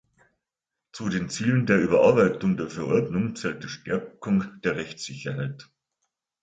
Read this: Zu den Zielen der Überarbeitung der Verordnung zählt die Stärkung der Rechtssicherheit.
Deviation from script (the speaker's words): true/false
false